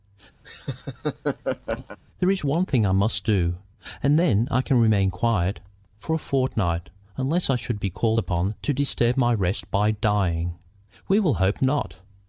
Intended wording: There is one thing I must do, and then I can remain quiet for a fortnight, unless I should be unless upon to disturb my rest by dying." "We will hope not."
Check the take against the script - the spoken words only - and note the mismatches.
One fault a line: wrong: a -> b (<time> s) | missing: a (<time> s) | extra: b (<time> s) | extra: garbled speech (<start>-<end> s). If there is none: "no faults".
wrong: unless -> called (7.9 s)